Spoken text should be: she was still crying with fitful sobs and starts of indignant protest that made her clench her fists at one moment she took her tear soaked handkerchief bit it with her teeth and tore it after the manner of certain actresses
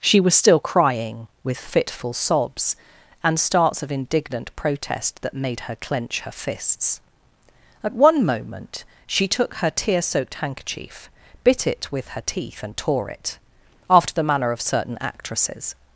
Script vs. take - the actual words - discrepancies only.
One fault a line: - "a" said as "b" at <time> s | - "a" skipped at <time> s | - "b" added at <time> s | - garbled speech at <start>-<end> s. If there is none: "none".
none